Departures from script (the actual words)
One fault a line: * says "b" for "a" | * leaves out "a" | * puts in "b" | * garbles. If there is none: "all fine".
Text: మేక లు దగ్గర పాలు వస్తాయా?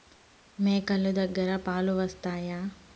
all fine